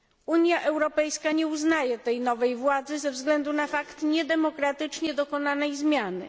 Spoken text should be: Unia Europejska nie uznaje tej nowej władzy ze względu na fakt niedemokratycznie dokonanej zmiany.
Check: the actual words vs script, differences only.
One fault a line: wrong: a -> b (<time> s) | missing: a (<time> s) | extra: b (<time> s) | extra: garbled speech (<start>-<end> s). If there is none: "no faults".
no faults